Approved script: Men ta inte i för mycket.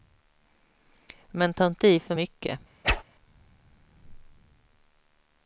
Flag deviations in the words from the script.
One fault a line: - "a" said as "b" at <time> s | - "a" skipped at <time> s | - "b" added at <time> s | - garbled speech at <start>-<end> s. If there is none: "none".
none